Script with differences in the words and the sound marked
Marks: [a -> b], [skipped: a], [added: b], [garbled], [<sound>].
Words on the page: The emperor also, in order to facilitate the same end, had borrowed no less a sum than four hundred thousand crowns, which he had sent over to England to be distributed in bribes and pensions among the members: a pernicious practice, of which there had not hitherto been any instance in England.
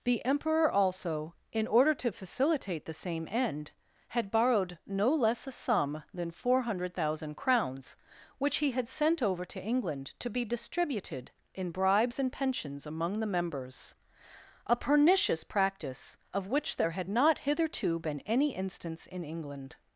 The emperor also, in order to facilitate the same end, had borrowed no less a sum than four hundred thousand crowns, which he had sent over to England to be distributed in bribes and pensions among the members: a pernicious practice, of which there had not hitherto been any instance in England.